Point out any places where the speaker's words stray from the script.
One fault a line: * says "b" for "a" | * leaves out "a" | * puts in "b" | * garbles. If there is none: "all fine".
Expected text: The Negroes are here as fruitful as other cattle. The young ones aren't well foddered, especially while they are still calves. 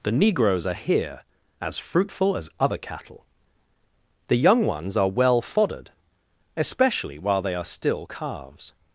* says "are" for "aren't"